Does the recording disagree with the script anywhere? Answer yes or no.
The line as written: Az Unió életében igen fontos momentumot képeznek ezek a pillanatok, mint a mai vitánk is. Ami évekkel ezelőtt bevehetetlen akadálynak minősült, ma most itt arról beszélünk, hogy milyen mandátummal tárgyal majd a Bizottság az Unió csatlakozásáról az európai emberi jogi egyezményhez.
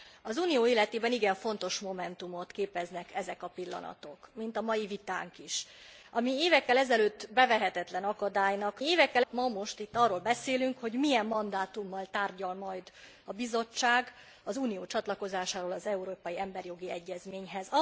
yes